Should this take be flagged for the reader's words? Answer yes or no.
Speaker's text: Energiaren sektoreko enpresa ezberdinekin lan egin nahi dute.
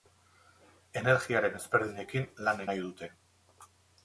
yes